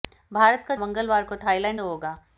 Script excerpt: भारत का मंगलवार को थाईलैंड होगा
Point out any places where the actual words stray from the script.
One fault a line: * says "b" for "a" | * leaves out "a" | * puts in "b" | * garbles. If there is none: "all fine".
all fine